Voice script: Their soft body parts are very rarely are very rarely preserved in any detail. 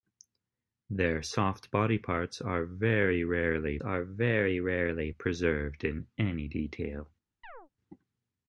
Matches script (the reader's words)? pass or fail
pass